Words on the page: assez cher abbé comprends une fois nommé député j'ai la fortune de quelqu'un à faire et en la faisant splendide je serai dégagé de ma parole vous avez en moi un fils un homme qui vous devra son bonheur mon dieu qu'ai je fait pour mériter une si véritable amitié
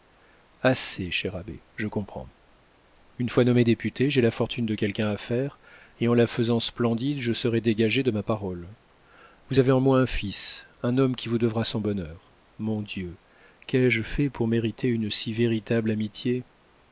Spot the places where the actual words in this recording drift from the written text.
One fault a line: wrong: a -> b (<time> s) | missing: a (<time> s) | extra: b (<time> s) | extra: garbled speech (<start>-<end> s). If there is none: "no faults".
extra: je (1.8 s)